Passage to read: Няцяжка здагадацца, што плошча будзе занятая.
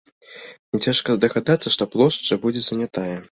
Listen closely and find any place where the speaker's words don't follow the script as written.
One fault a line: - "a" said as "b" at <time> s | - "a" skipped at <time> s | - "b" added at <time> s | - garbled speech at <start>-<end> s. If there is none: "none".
none